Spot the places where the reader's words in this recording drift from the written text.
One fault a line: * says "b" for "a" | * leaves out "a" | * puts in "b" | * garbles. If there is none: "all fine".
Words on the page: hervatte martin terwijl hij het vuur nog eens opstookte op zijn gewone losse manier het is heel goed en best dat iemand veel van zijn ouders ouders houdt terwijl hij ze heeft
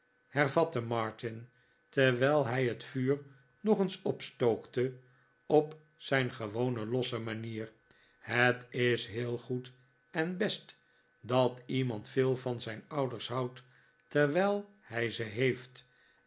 * leaves out "ouders"